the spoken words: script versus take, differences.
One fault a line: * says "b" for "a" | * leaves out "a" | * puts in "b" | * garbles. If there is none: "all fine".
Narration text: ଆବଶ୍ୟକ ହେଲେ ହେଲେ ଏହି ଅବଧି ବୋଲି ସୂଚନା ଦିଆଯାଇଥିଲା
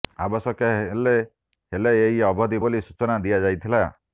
all fine